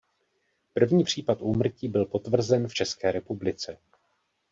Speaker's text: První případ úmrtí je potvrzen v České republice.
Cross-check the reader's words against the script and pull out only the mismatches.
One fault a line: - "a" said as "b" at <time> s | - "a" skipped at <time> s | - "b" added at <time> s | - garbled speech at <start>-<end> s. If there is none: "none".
- "je" said as "byl" at 1.9 s